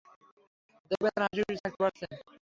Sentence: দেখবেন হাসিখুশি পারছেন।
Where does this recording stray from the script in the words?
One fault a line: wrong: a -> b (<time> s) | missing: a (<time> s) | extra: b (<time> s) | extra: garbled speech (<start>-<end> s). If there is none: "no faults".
extra: থাকতে (1.6 s)